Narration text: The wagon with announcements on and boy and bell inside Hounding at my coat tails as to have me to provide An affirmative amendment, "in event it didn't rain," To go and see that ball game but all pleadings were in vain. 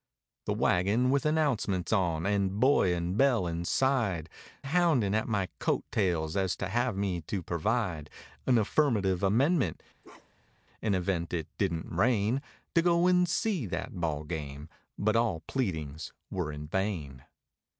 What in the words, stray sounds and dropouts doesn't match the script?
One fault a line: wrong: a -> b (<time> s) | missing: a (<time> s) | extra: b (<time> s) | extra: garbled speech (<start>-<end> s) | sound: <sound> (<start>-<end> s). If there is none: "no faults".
sound: bark (10.0-10.6 s)